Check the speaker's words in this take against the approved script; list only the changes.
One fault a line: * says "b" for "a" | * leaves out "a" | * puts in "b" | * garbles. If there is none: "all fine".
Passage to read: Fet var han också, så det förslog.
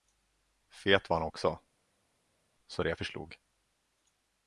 all fine